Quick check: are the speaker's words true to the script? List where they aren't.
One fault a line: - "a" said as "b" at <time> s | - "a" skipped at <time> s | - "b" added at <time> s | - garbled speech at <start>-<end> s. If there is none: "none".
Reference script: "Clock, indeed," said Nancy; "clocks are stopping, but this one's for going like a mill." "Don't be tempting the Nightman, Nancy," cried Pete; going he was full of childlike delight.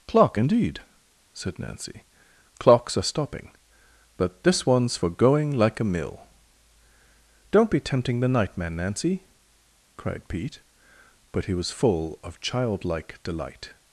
- "going" said as "but" at 11.3 s